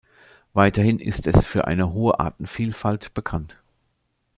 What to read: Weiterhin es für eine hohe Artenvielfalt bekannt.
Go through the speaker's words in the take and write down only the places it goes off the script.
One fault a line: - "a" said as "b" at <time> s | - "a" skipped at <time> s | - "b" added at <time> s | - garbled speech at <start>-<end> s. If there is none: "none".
- "ist" added at 1.0 s